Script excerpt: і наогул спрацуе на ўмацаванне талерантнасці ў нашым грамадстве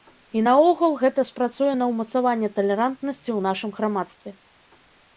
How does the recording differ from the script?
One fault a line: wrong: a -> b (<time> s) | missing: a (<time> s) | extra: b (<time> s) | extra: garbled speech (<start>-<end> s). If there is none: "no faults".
extra: гэта (1.0 s)